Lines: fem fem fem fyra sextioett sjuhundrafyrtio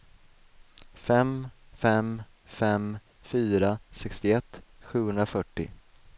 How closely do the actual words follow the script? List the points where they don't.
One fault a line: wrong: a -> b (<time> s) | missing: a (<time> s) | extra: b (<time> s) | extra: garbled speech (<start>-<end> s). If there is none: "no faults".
no faults